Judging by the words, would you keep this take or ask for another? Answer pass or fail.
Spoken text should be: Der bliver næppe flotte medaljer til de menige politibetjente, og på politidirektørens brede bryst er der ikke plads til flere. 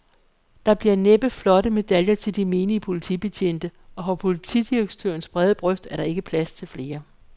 pass